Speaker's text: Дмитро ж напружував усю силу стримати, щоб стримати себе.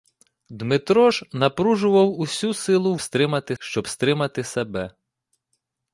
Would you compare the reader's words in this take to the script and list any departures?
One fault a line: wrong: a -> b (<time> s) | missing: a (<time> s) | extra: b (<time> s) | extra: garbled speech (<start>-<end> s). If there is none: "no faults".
no faults